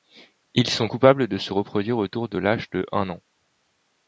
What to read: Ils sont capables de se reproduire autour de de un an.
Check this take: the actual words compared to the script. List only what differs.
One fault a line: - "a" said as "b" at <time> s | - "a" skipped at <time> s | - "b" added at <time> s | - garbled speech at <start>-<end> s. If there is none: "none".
- "l'âge" added at 2.4 s